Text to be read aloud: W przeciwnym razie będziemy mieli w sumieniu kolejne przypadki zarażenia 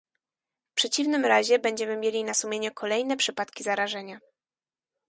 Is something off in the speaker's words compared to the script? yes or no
yes